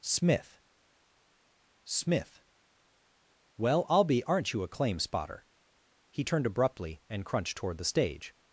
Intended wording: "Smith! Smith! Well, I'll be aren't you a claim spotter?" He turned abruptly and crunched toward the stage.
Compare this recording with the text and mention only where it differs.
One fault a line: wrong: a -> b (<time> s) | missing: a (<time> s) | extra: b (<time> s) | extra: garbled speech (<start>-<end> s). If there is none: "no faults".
no faults